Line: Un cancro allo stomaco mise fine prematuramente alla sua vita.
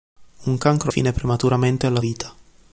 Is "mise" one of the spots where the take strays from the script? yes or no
yes